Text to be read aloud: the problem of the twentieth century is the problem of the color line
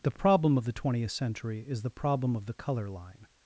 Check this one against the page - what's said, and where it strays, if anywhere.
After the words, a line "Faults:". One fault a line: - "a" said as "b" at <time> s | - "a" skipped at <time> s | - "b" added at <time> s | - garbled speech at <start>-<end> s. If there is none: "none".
the problem of the twentieth century is the problem of the color line
Faults:
none